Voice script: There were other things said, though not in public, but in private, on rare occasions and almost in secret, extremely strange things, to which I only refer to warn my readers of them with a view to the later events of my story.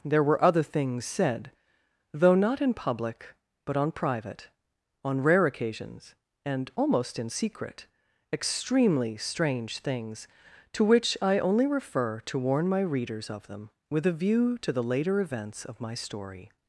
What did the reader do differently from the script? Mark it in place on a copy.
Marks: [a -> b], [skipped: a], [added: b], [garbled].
There were other things said, though not in public, but [in -> on] private, on rare occasions and almost in secret, extremely strange things, to which I only refer to warn my readers of them with a view to the later events of my story.